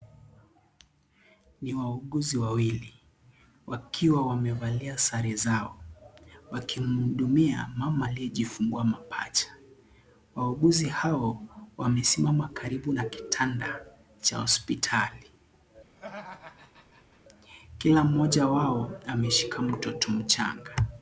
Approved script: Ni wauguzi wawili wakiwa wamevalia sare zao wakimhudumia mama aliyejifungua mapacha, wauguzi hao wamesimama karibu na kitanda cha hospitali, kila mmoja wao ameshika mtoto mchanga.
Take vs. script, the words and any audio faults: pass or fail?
fail